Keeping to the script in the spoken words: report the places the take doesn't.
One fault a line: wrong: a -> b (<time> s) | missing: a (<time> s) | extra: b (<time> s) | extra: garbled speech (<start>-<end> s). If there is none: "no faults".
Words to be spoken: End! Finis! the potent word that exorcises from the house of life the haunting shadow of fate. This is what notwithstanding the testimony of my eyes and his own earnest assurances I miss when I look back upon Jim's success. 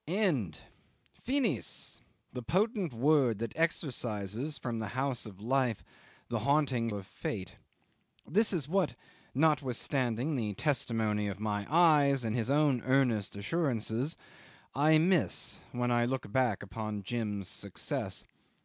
missing: shadow (6.9 s)